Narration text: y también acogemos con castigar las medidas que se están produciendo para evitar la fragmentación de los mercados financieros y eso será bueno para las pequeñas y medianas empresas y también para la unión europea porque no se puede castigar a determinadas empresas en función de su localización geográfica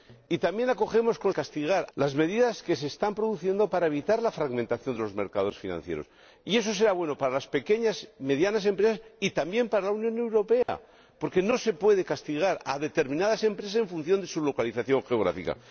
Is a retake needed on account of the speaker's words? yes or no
no